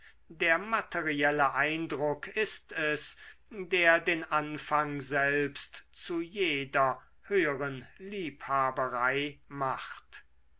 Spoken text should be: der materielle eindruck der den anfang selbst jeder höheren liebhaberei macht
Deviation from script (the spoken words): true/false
true